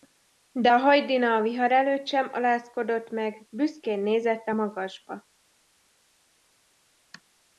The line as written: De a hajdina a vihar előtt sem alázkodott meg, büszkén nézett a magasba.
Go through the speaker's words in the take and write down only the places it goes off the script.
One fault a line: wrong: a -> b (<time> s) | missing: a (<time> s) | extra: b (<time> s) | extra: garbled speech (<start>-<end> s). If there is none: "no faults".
no faults